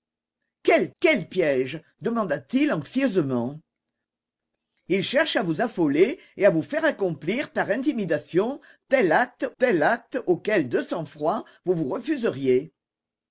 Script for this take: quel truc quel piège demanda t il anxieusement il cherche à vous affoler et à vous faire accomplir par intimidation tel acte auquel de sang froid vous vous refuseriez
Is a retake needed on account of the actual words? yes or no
yes